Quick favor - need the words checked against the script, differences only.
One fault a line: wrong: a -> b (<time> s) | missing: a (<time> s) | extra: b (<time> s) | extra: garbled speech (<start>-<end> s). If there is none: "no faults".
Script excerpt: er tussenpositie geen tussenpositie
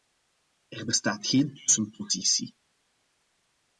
wrong: tussenpositie -> bestaat (0.8 s)